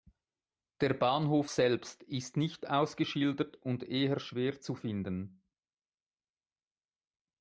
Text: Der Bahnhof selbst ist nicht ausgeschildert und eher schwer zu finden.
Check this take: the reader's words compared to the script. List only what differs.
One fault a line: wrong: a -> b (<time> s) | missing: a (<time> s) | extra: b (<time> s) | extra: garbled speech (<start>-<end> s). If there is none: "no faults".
no faults